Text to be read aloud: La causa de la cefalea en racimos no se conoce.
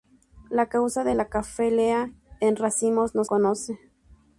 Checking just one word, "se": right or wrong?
wrong